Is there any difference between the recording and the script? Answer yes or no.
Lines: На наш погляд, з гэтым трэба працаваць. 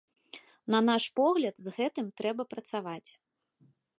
no